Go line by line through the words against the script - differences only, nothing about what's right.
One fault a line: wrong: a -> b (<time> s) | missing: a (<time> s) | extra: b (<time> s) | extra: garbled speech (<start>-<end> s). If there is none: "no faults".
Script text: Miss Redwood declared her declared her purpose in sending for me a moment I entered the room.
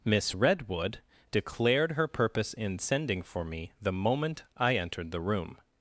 missing: declared her (2.1 s)
wrong: a -> the (3.8 s)